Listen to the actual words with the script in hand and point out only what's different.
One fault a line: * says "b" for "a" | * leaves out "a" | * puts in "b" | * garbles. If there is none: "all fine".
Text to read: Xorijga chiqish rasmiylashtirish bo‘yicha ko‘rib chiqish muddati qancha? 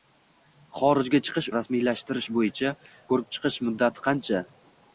all fine